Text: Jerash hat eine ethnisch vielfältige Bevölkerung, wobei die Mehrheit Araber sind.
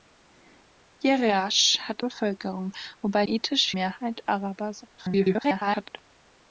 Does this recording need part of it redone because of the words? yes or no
yes